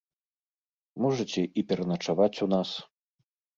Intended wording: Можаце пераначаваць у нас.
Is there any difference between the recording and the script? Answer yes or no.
yes